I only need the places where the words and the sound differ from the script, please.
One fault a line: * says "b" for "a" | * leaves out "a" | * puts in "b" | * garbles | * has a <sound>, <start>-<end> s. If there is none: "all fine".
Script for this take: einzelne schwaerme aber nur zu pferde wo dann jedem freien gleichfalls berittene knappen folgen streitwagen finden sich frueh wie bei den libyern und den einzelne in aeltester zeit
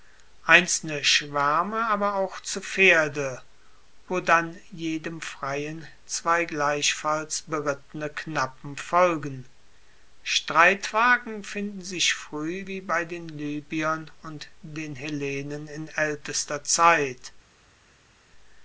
* says "auch" for "nur"
* puts in "zwei"
* says "hellenen" for "einzelne"